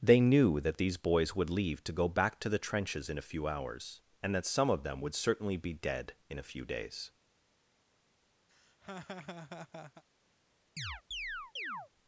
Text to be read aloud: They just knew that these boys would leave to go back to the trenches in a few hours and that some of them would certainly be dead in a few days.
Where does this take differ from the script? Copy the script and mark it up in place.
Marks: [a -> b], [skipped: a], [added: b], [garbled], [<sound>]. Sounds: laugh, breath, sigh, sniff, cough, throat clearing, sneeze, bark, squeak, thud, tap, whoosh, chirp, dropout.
They [skipped: just] knew that these boys would leave to go back to the trenches in a few hours and that some of them would certainly be dead in a few days. [laugh] [chirp]